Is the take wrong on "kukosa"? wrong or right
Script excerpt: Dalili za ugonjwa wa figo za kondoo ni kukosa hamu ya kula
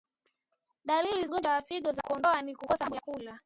right